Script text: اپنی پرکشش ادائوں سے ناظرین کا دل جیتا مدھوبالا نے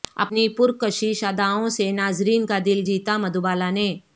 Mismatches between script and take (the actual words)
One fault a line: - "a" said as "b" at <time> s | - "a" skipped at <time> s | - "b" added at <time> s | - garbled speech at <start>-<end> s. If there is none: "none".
none